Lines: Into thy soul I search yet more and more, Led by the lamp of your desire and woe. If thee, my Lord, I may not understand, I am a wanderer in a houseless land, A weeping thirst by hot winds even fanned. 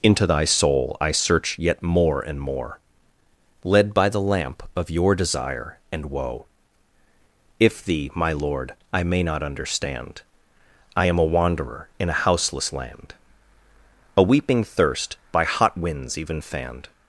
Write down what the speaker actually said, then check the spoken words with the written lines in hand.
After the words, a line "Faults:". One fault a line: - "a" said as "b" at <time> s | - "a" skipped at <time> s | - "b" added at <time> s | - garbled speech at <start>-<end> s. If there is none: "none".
Into thy soul I search yet more and more, Led by the lamp of your desire and woe. If thee, my Lord, I may not understand, I am a wanderer in a houseless land, A weeping thirst by hot winds even fanned.
Faults:
none